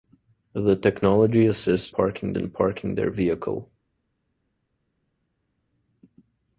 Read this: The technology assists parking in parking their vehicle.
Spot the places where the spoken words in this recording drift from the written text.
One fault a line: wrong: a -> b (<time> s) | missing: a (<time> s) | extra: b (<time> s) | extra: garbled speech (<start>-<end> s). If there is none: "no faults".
no faults